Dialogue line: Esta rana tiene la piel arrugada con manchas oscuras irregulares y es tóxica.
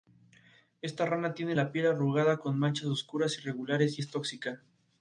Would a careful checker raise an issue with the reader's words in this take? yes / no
no